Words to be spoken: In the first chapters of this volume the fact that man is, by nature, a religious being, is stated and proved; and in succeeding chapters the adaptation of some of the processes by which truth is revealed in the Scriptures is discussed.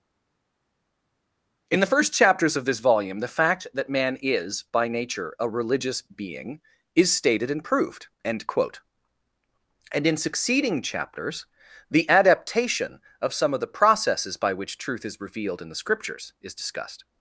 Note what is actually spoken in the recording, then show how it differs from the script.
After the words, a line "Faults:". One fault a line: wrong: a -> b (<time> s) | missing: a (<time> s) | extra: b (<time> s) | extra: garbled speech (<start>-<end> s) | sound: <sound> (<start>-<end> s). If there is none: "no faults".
In the first chapters of this volume the fact that man is, by nature, a religious being, is stated and proved; end quote and in succeeding chapters the adaptation of some of the processes by which truth is revealed in the Scriptures is discussed.
Faults:
extra: end quote (8.2 s)